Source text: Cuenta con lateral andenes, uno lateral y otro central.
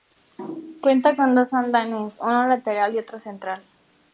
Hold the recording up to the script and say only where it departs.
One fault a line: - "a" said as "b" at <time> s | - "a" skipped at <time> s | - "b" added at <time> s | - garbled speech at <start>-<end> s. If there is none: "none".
- "lateral" said as "dos" at 1.4 s